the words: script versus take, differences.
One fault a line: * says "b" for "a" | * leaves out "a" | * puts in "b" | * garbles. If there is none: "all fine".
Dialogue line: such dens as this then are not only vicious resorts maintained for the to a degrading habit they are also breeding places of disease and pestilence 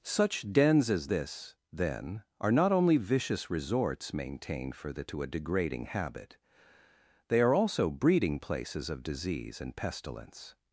all fine